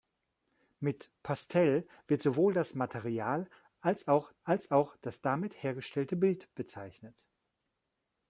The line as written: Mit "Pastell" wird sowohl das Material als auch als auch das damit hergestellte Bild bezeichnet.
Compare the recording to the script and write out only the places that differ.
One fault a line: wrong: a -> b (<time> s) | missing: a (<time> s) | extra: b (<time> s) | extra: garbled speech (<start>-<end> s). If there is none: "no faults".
no faults